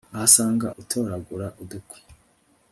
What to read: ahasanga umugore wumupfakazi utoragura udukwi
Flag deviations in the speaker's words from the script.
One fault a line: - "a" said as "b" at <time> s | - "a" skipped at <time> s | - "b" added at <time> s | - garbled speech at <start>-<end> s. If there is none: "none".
- "umugore wumupfakazi" skipped at 0.7 s